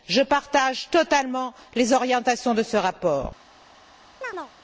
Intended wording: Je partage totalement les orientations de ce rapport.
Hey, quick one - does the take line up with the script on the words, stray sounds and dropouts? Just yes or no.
no